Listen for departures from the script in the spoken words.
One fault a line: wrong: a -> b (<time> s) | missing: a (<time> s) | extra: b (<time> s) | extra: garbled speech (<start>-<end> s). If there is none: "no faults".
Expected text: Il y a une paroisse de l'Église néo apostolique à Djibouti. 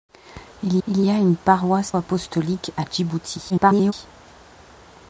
extra: il (0.9 s)
missing: de l'Église néo (1.9 s)
extra: garbled speech (3.5-3.9 s)